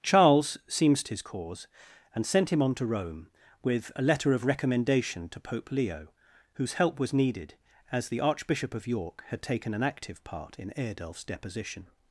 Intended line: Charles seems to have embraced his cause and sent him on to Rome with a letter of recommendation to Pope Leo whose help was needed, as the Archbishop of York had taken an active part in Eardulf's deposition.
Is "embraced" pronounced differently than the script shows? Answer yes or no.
yes